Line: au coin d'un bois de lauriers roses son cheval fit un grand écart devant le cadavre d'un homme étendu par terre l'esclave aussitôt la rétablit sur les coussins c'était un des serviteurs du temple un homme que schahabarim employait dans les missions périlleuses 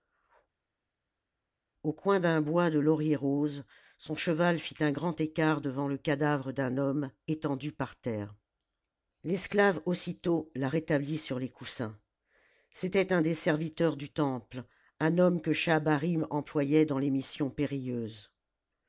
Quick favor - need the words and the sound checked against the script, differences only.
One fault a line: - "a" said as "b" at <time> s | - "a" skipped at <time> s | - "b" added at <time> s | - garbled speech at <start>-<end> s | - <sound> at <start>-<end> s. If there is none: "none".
none